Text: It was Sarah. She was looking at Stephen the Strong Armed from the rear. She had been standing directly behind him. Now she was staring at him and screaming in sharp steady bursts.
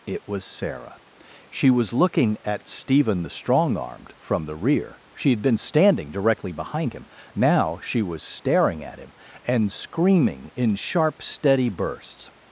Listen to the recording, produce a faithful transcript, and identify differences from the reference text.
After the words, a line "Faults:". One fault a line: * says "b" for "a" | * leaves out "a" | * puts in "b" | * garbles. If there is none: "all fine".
It was Sarah. She was looking at Stephen the Strong Armed from the rear. She had been standing directly behind him. Now she was staring at him and screaming in sharp steady bursts.
Faults:
all fine